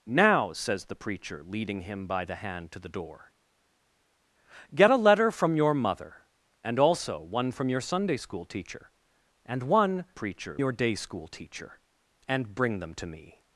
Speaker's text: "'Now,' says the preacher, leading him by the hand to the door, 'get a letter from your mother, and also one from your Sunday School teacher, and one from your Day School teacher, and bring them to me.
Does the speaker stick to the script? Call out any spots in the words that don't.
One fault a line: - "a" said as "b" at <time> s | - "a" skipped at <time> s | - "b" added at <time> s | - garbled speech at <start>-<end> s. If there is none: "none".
- "from" said as "preacher" at 10.1 s